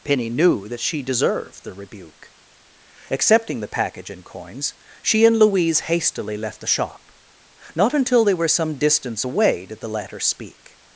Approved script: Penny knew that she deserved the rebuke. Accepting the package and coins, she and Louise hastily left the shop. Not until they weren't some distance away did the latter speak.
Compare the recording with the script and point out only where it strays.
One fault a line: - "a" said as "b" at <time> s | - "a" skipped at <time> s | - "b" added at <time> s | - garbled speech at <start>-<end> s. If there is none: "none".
- "weren't" said as "were" at 8.3 s